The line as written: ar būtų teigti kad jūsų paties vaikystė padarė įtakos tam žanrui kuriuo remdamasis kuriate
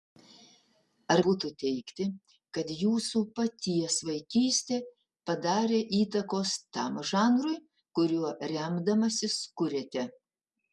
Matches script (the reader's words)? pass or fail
pass